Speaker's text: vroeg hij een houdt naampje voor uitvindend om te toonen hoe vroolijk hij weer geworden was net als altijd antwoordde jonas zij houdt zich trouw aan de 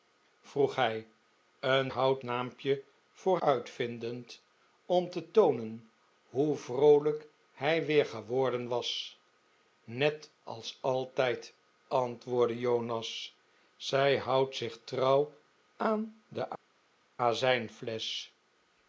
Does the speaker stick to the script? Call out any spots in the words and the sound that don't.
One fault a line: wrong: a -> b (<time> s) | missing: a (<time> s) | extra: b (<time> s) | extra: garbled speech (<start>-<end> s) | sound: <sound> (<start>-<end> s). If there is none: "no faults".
no faults